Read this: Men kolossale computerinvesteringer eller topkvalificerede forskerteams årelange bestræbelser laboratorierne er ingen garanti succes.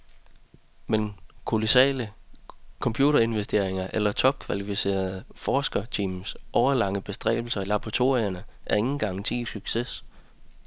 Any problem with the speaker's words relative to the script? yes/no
no